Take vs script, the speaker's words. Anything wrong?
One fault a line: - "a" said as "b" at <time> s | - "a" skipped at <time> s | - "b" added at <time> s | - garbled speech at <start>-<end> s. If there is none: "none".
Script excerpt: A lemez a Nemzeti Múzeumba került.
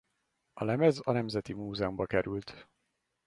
none